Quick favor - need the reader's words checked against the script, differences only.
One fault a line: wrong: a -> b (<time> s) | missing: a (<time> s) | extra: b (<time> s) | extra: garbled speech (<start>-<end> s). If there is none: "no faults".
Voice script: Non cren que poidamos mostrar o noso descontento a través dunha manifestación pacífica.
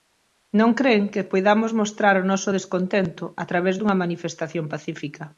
no faults